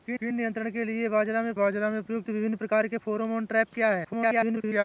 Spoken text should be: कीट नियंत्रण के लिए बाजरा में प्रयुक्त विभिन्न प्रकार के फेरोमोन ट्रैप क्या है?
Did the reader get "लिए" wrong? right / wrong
right